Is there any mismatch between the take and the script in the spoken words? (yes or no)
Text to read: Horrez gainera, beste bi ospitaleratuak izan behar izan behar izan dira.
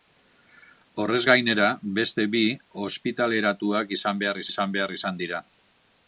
no